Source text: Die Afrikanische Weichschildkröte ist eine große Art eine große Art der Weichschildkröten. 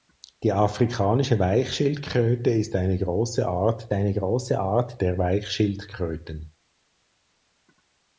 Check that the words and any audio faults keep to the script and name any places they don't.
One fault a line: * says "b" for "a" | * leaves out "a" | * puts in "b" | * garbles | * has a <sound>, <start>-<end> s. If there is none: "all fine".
all fine